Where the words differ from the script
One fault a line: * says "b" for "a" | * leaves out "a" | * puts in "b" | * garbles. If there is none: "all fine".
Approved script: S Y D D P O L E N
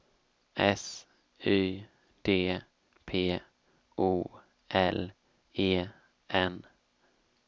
* leaves out "D"